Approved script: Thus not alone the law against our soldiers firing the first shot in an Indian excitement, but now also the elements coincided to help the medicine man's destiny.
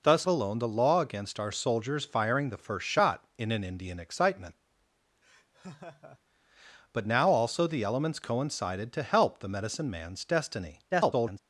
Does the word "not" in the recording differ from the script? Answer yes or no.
yes